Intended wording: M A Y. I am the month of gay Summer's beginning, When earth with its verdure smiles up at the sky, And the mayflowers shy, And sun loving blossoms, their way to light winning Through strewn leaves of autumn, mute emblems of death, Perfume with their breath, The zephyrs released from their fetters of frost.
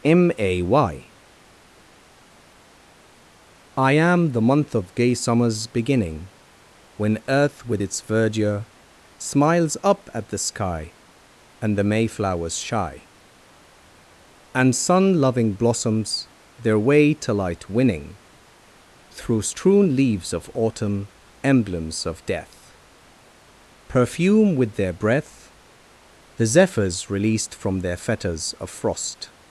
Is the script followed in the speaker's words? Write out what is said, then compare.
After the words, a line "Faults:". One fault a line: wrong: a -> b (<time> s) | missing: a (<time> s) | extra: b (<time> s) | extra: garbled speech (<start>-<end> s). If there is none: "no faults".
M A Y. I am the month of gay Summer's beginning, When earth with its verdure smiles up at the sky, And the mayflowers shy, And sun loving blossoms, their way to light winning Through strewn leaves of autumn, emblems of death, Perfume with their breath, The zephyrs released from their fetters of frost.
Faults:
missing: mute (21.1 s)